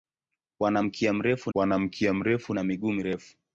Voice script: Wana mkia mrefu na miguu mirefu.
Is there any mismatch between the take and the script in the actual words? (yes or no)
yes